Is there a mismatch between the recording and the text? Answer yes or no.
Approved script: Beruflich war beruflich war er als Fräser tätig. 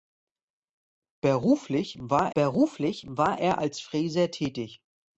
no